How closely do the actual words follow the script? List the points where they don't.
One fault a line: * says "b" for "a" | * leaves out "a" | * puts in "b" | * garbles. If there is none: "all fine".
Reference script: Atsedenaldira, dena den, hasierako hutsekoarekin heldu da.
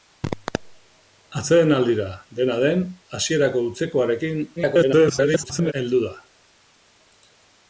* garbles